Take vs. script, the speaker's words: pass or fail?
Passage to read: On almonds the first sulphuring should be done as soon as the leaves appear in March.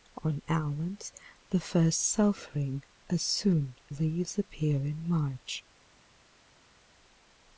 fail